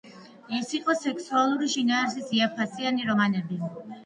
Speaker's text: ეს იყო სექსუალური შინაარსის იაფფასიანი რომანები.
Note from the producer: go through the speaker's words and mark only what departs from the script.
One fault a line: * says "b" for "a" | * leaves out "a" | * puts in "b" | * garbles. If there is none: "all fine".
all fine